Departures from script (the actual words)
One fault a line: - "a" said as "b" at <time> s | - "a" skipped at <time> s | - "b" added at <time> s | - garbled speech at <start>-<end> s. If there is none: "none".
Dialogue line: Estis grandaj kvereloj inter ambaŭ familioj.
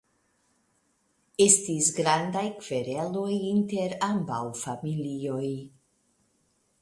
none